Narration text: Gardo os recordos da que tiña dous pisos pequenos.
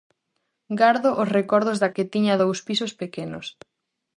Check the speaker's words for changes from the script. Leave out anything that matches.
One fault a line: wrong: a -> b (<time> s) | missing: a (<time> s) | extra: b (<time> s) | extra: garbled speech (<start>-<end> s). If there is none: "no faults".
no faults